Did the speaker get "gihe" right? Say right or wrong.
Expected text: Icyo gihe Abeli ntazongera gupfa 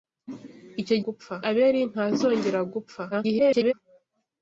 wrong